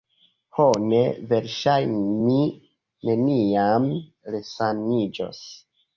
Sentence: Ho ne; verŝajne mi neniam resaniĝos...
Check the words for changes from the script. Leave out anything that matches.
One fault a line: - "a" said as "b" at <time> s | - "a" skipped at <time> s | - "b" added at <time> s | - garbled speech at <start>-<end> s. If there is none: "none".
none